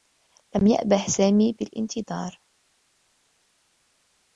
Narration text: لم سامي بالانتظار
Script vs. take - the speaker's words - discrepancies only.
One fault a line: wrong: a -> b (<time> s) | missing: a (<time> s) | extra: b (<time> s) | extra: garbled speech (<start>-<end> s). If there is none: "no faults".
extra: يأبه (0.7 s)